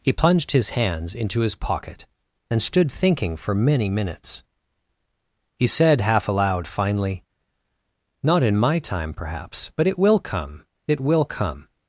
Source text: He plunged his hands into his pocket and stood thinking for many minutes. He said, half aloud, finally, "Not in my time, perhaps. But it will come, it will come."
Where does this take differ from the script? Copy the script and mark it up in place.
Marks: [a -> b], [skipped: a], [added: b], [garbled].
He plunged his hands into his pocket and stood thinking for many minutes. He said, half aloud, finally, "Not in my time, perhaps. But it will come, it will come."